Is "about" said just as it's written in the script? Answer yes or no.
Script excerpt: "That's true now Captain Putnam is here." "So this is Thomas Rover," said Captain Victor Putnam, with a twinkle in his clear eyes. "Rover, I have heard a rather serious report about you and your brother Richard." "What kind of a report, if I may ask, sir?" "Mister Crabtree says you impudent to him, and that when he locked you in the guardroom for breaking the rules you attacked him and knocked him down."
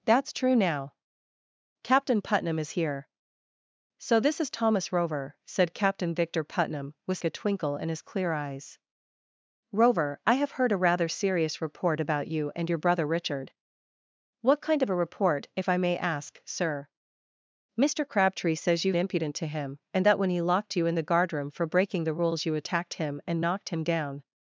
yes